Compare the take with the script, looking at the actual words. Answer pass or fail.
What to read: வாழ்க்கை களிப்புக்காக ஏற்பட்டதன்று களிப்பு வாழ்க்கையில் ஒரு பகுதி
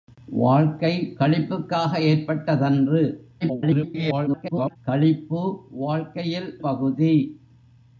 fail